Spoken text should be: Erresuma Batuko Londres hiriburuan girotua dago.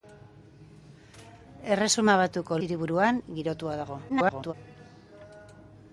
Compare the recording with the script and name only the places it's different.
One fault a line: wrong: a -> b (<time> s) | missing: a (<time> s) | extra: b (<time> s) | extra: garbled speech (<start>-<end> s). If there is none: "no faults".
missing: Londres (2.6 s)
extra: garbled speech (4.1-4.5 s)